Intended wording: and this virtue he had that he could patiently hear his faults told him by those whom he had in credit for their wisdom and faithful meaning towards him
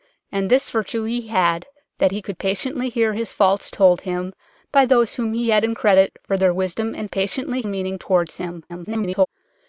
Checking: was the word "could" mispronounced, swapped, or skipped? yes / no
no